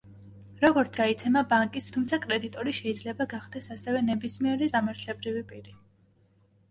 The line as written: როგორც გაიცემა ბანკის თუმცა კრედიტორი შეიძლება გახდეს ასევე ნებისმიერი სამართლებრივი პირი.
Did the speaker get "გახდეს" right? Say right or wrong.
right